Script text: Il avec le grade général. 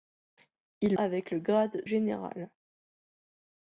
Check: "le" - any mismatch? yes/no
no